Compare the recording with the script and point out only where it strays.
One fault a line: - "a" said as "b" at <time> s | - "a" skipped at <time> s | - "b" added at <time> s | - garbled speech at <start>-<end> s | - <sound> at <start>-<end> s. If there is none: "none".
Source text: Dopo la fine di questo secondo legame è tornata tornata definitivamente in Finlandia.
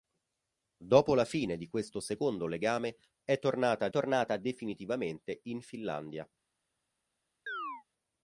- chirp at 7.5-7.8 s